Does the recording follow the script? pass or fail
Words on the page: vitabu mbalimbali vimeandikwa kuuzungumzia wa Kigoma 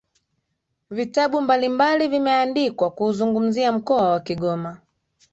fail